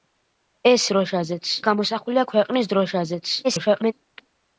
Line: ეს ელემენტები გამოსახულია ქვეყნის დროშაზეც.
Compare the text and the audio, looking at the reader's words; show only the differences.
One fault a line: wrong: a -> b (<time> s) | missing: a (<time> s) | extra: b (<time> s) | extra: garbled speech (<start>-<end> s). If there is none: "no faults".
wrong: ელემენტები -> დროშაზეც (0.9 s)
extra: garbled speech (3.4-3.9 s)